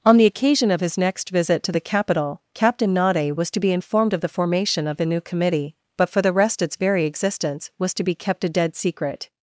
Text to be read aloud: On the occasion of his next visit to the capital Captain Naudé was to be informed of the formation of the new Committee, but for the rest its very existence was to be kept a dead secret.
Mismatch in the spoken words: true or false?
false